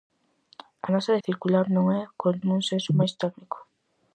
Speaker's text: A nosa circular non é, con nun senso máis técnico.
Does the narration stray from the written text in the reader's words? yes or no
no